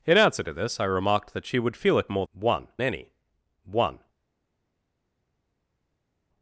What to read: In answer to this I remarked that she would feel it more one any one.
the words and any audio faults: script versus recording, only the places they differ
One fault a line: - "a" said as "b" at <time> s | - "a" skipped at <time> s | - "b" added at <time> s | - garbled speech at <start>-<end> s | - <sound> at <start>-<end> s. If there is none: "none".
none